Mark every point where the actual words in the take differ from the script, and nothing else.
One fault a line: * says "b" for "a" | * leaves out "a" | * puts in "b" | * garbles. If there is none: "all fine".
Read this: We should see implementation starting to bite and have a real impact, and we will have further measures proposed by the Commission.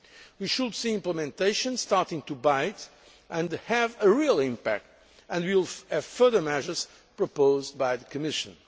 all fine